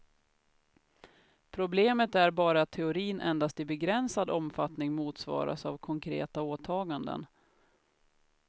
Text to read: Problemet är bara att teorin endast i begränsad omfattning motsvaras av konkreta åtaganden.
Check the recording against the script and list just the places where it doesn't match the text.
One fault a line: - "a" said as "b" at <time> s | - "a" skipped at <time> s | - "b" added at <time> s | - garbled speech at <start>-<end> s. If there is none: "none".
none